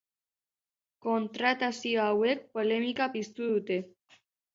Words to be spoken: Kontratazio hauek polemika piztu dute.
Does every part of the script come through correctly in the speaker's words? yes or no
yes